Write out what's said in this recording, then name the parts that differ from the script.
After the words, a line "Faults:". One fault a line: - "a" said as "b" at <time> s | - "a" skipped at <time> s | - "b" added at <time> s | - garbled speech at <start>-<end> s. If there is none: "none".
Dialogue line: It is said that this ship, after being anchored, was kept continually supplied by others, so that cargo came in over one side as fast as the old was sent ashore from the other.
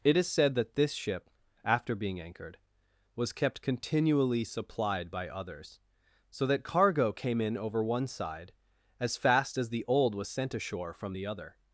It is said that this ship, after being anchored, was kept continually supplied by others, so that cargo came in over one side as fast as the old was sent ashore from the other.
Faults:
none